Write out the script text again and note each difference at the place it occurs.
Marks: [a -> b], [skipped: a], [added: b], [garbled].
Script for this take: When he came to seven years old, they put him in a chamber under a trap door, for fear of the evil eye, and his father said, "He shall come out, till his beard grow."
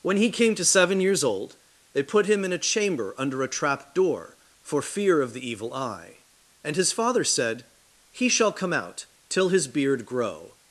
When he came to seven years old, they put him in a chamber under a trap door, for fear of the evil eye, and his father said, "He shall come out, till his beard grow."